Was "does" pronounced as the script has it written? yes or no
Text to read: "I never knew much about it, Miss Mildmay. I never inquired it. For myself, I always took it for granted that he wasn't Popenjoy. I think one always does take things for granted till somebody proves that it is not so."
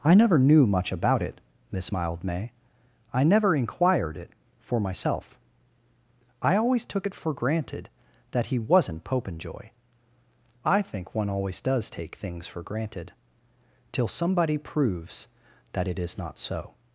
yes